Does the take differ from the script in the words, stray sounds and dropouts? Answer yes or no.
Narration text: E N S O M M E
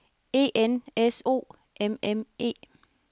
no